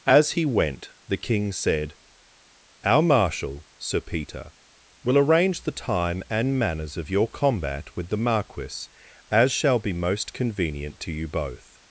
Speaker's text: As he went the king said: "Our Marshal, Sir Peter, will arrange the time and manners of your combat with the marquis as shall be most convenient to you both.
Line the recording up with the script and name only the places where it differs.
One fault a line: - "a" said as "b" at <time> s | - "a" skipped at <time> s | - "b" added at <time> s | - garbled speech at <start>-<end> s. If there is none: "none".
none